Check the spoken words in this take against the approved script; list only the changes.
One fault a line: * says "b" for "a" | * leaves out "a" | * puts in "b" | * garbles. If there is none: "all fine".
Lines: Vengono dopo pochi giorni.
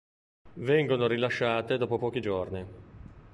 * puts in "rilasciate"